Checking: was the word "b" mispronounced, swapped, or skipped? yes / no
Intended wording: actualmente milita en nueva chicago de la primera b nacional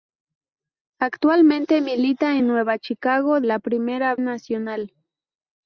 yes